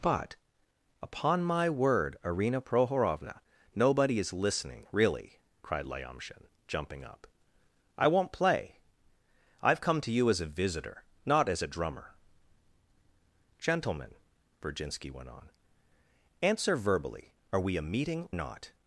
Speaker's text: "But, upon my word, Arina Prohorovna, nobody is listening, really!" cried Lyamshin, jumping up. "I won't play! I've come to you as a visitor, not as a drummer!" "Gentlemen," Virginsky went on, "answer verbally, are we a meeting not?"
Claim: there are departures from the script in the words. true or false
false